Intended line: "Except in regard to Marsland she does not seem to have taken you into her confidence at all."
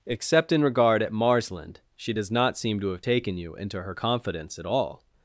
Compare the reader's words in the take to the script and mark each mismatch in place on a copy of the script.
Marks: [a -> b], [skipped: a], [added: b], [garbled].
"Except in regard [to -> at] Marsland she does not seem to have taken you into her confidence at all."